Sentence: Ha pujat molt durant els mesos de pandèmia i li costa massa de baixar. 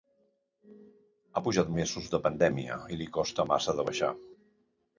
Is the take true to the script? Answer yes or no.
no